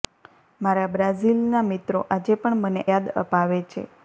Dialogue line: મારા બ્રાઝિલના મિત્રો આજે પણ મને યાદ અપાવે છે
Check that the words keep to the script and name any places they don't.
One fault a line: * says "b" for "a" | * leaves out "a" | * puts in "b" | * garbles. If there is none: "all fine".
all fine